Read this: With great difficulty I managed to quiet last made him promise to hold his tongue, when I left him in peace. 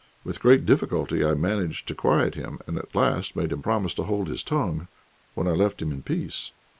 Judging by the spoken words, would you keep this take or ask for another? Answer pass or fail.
fail